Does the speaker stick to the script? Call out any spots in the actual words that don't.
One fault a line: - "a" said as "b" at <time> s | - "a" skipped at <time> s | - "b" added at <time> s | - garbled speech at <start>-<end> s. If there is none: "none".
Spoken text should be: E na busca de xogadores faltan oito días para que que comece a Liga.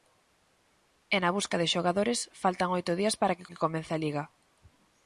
none